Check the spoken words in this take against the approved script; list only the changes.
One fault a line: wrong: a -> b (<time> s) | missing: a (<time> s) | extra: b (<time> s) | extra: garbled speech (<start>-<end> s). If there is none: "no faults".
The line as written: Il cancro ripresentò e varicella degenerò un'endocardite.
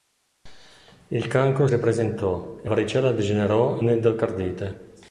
no faults